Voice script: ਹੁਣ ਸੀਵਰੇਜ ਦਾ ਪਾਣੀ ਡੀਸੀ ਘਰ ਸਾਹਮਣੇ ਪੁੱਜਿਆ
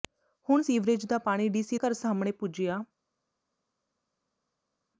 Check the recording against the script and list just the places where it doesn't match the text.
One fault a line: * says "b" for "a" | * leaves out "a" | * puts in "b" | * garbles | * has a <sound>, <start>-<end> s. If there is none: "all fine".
all fine